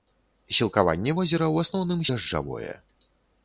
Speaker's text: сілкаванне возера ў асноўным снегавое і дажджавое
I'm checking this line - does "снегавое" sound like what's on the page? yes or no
no